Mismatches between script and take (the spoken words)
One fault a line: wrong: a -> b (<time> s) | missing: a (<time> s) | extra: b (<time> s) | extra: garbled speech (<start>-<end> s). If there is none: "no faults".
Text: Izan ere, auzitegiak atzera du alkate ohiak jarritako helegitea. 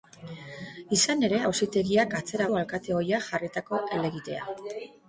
no faults